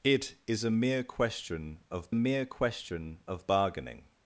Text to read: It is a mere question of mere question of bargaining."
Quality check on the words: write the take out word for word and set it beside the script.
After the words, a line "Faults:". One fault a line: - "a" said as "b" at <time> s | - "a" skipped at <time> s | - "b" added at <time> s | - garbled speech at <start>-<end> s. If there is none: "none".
It is a mere question of mere question of bargaining."
Faults:
none